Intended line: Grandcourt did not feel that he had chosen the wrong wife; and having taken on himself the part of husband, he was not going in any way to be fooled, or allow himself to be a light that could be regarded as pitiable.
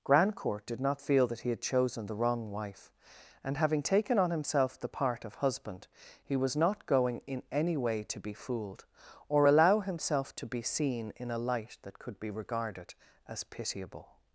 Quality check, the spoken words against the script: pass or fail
fail